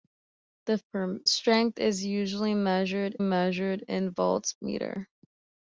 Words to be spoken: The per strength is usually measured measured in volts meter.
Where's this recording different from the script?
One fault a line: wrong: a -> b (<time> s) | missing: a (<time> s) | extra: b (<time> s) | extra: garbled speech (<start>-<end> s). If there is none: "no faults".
no faults